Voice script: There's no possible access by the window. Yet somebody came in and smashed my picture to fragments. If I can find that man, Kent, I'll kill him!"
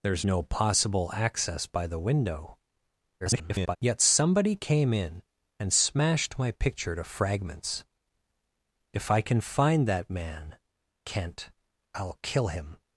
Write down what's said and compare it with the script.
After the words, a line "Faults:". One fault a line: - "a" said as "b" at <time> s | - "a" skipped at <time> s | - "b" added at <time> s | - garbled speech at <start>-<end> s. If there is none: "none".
There's no possible access by the window. [garbled] Yet somebody came in and smashed my picture to fragments. If I can find that man, Kent, I'll kill him!"
Faults:
- garbled speech at 3.2-3.8 s